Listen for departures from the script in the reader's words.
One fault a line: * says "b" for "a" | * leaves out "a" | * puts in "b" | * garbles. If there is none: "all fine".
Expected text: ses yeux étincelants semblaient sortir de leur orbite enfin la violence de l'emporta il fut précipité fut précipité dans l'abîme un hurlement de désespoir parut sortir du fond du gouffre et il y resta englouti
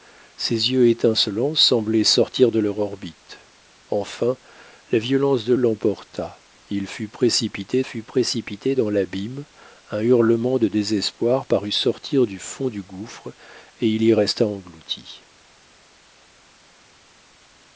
all fine